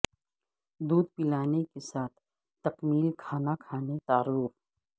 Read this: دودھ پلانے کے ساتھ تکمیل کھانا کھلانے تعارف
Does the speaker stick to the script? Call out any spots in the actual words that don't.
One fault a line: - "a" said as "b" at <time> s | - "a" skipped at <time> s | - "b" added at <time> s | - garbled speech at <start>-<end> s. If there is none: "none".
none